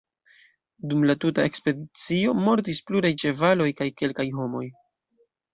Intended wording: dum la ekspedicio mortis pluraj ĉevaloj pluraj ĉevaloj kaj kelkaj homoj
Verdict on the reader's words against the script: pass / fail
fail